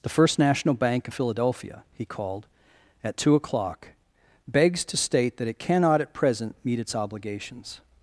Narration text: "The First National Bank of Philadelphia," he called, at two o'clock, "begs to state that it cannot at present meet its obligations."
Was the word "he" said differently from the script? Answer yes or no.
no